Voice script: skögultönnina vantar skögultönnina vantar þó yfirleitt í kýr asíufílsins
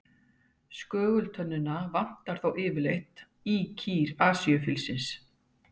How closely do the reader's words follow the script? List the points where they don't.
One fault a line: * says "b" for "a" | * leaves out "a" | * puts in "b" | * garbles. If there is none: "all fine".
* leaves out "skögultönnina vantar"